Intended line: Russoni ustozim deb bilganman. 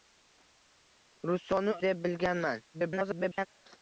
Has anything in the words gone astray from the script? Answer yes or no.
yes